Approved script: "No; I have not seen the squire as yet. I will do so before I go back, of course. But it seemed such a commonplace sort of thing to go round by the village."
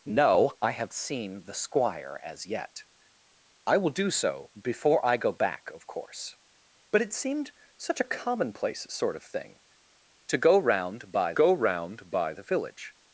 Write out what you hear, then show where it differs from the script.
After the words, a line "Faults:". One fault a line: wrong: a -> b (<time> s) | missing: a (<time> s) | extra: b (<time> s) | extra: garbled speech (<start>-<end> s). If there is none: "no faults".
"No; I have seen the squire as yet. I will do so before I go back, of course. But it seemed such a commonplace sort of thing to go round by go round by the village."
Faults:
missing: not (0.9 s)
extra: go round by (11.3 s)